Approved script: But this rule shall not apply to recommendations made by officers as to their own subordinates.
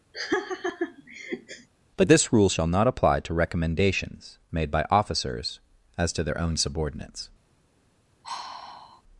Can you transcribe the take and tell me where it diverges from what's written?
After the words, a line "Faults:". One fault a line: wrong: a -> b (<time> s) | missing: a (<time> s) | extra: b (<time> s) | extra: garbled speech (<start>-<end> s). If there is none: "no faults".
But this rule shall not apply to recommendations made by officers as to their own subordinates.
Faults:
no faults